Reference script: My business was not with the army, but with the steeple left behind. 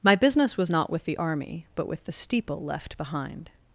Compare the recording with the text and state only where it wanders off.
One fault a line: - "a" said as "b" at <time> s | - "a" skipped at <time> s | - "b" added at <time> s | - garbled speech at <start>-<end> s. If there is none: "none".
none